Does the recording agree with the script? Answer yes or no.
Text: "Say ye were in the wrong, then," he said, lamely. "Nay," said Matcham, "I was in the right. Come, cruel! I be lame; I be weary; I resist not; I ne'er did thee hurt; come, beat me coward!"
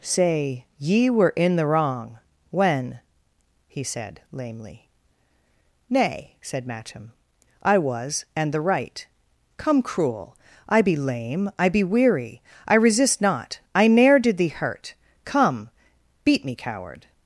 no